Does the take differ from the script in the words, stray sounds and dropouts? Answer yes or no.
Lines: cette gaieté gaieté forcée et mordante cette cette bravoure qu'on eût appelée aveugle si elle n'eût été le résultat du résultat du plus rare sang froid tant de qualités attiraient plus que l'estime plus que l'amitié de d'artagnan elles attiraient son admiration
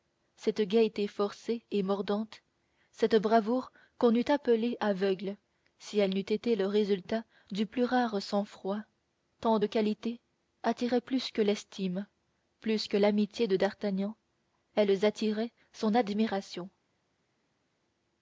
yes